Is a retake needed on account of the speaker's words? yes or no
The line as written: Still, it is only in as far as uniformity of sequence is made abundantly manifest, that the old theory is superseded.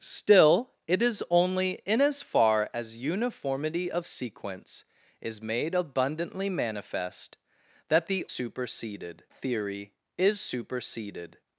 yes